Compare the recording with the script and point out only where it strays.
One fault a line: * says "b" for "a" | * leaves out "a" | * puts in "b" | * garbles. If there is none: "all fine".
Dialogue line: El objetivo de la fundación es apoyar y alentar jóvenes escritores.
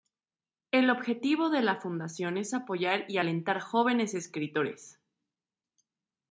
all fine